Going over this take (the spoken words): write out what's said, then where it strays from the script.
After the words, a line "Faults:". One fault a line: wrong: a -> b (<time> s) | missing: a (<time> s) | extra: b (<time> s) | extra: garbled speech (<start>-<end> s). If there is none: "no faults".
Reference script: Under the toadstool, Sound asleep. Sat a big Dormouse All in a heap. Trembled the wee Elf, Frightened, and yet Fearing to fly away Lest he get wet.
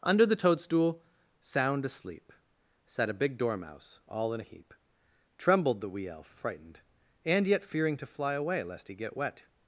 Under the toadstool, Sound asleep. Sat a big Dormouse All in a heap. Trembled the wee Elf, Frightened, and yet Fearing to fly away Lest he get wet.
Faults:
no faults